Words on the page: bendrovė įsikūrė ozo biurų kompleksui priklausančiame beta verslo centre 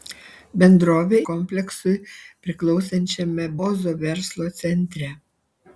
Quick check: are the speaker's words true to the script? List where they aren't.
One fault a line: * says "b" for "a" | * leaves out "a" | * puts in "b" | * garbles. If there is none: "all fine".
* leaves out "įsikūrė ozo biurų"
* says "ozo" for "beta"